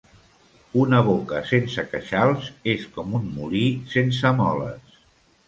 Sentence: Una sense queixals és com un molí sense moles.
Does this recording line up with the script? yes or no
no